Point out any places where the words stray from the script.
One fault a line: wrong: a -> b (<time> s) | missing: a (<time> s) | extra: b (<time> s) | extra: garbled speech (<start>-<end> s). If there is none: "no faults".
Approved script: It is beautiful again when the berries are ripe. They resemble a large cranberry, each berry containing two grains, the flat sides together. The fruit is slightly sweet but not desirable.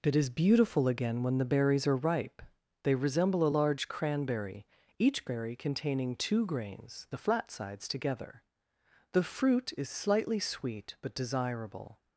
missing: not (11.2 s)